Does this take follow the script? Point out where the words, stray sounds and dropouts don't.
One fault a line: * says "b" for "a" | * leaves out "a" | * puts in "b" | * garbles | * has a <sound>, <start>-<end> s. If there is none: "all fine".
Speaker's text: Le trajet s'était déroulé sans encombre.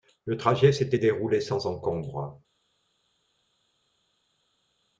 all fine